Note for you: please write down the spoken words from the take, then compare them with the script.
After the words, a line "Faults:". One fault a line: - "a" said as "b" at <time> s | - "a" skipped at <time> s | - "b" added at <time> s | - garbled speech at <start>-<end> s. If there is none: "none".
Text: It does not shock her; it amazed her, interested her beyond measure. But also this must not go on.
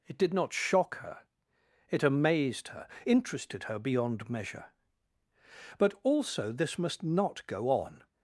It did not shock her; it amazed her, interested her beyond measure. But also this must not go on.
Faults:
- "does" said as "did" at 0.2 s